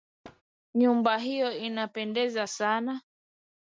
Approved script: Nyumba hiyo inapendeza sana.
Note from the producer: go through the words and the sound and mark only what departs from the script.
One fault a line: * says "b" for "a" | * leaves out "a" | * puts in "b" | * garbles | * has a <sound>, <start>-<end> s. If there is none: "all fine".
* has a thud, 0.2-0.4 s